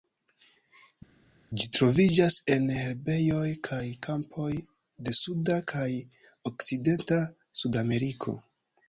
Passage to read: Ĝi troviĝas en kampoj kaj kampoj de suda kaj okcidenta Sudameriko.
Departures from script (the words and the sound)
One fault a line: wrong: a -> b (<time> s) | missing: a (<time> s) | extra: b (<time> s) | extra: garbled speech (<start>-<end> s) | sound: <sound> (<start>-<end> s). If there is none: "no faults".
wrong: kampoj -> herbejoj (2.8 s)